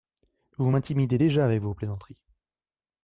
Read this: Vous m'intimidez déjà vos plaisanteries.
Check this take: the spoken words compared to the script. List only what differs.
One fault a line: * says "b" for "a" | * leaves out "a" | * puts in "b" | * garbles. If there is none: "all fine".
* puts in "avec"